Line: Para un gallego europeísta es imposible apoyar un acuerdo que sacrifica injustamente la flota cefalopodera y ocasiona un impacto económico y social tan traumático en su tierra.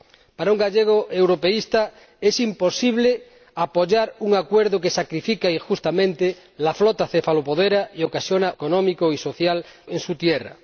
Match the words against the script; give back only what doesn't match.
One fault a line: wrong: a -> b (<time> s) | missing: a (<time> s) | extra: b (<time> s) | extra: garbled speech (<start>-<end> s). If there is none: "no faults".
missing: un impacto (8.5 s)
missing: tan traumático (9.6 s)